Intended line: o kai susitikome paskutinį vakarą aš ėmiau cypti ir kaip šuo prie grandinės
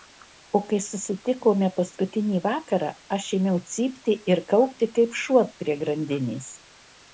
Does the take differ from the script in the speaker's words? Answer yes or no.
yes